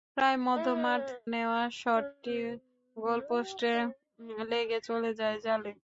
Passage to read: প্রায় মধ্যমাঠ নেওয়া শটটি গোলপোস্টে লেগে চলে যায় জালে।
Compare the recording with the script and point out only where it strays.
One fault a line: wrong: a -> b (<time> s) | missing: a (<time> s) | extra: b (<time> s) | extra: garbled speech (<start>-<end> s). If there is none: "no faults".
no faults